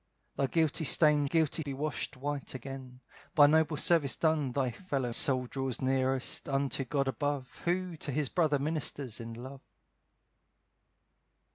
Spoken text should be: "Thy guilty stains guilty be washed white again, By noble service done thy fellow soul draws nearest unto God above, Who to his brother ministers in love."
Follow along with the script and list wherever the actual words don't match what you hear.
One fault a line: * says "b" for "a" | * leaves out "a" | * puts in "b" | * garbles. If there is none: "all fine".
all fine